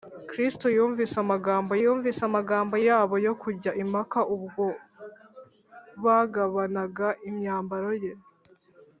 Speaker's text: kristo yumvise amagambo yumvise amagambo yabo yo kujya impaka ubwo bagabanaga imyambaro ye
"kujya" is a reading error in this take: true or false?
false